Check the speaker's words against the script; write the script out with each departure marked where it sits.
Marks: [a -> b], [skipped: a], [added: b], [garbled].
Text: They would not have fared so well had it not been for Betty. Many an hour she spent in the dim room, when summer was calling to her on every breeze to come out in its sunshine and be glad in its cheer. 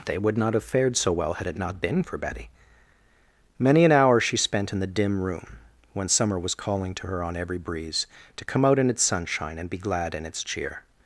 They would not have fared so well had it not been for Betty. Many an hour she spent in the dim room, when summer was calling to her on every breeze to come out in its sunshine and be glad in its cheer.